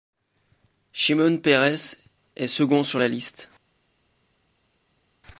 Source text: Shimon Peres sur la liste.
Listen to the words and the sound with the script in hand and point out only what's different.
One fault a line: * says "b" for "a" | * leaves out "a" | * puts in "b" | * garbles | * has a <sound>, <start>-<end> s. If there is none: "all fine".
* puts in "est second"